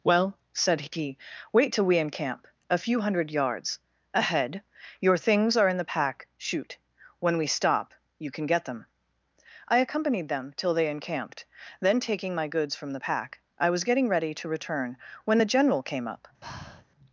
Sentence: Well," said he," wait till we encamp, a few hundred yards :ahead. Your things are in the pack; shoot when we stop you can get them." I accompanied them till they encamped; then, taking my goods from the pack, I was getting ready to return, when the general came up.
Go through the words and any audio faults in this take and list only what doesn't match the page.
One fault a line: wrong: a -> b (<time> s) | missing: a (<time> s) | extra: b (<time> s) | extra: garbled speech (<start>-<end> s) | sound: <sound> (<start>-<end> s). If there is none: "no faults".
sound: breath (16.4-16.8 s)